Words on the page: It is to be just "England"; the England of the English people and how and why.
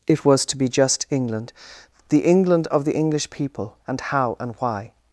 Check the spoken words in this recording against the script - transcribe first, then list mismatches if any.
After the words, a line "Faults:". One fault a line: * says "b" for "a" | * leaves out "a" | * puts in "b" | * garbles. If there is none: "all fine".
It was to be just "England"; the England of the English people and how and why.
Faults:
* says "was" for "is"